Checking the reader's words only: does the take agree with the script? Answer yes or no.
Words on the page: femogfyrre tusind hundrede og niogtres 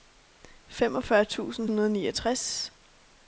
yes